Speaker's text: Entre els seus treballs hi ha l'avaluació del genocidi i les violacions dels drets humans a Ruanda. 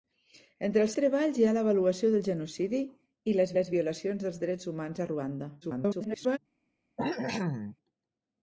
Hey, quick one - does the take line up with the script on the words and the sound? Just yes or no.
no